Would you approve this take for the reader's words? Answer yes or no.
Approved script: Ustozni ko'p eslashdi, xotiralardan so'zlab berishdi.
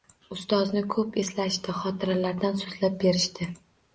yes